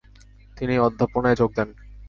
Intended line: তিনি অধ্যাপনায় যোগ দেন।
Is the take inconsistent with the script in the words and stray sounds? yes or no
no